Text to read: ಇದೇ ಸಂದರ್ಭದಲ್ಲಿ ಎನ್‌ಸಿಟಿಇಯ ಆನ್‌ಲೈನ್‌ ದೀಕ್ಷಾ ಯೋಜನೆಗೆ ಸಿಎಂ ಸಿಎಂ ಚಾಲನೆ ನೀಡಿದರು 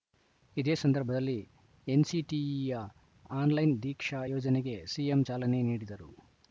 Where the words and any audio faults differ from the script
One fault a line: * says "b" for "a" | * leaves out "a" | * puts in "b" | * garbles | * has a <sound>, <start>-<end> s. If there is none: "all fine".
* leaves out "ಸಿಎಂ"